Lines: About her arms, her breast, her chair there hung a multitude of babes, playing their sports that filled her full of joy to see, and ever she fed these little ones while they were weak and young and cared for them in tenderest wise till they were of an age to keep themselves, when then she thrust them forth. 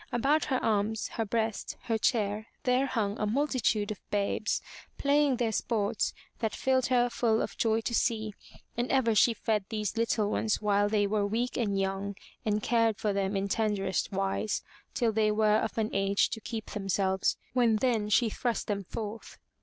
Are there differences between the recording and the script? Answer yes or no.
no